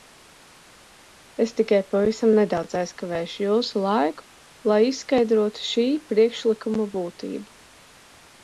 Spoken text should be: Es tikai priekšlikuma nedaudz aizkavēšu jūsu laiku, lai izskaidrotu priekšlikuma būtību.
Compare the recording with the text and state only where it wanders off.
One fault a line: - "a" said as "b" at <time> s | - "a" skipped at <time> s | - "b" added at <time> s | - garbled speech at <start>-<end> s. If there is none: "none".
- "priekšlikuma" said as "pavisam" at 1.9 s
- "šī" added at 5.7 s